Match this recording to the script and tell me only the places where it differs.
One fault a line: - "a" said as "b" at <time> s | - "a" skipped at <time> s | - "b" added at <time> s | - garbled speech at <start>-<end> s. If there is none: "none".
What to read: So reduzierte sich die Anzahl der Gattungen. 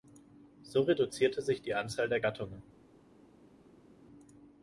none